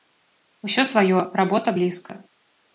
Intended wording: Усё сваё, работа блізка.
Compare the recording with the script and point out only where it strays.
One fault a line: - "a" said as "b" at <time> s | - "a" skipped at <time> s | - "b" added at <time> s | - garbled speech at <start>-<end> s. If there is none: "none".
none